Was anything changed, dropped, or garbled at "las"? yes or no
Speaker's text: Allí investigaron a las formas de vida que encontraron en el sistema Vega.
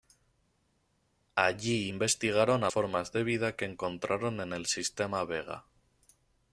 yes